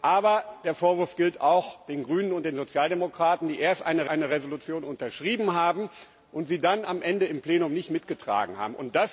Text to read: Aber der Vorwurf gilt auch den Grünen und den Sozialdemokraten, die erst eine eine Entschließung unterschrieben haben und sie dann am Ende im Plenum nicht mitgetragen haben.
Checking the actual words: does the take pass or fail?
pass